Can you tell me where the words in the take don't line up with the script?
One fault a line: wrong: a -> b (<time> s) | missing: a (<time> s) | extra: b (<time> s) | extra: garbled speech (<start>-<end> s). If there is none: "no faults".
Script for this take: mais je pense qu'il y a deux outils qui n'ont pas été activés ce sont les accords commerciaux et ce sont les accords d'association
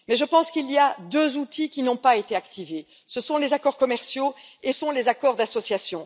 missing: ce (4.7 s)